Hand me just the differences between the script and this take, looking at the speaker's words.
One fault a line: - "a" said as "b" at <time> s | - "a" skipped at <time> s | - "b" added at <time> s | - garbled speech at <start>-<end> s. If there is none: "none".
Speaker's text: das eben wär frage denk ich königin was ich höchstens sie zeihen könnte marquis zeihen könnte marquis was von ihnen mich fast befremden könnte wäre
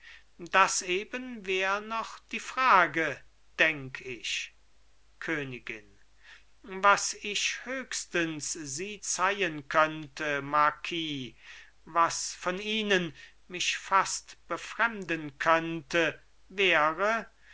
- "noch die" added at 1.8 s
- "zeihen könnte marquis" skipped at 11.3 s